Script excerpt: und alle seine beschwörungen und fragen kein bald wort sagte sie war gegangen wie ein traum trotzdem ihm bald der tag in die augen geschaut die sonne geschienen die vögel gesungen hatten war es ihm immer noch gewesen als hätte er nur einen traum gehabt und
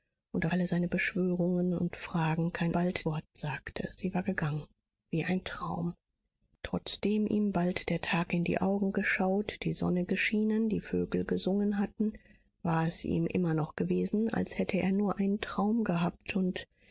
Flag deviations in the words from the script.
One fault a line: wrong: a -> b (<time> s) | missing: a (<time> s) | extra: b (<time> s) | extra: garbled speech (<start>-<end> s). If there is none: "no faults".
no faults